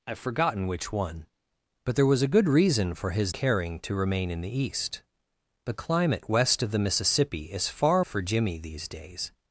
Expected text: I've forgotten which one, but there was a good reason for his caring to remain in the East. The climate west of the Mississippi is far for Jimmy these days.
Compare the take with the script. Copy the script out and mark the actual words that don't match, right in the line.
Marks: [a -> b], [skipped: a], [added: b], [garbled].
I've forgotten which one, but there was a good reason for his caring to remain in the East. The climate west of the Mississippi is far for Jimmy these days.